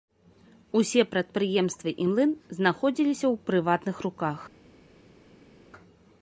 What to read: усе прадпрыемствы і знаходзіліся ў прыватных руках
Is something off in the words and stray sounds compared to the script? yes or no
yes